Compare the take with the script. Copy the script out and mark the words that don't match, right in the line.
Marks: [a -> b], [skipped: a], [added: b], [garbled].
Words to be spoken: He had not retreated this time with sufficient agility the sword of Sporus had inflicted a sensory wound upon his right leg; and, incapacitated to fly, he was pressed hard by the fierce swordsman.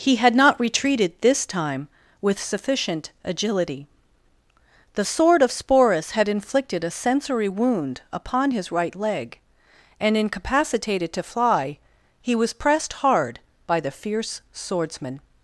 He had not retreated this time with sufficient agility the sword of Sporus had inflicted a sensory wound upon his right leg; and, incapacitated to fly, he was pressed hard by the fierce swordsman.